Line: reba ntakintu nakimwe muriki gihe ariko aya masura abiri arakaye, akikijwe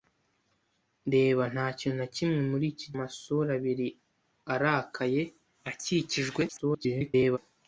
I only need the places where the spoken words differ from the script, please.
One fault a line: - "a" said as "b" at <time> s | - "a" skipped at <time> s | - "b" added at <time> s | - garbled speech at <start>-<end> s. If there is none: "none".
- "gihe ariko aya" skipped at 2.9 s
- garbled speech at 6.5-7.4 s